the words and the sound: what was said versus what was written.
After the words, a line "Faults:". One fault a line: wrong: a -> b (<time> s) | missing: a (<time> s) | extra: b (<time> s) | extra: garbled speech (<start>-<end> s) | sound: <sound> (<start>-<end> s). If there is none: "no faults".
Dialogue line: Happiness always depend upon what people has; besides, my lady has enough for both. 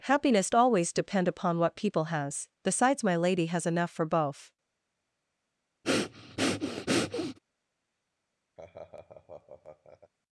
Happiness always depend upon what people has; besides, my lady has enough for both.
Faults:
sound: breath (5.8-7.4 s)
sound: laugh (8.6-10.1 s)